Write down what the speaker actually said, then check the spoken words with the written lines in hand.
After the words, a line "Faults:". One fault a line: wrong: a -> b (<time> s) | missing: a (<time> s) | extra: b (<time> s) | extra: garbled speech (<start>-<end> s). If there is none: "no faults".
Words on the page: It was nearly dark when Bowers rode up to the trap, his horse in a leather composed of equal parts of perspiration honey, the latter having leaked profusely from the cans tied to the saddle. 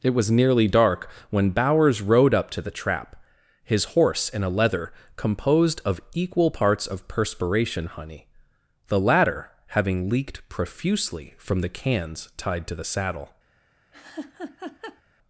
It was nearly dark when Bowers rode up to the trap, his horse in a leather composed of equal parts of perspiration honey, the latter having leaked profusely from the cans tied to the saddle.
Faults:
no faults